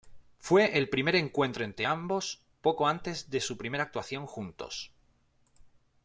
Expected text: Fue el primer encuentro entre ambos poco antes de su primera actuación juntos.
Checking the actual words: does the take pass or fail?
pass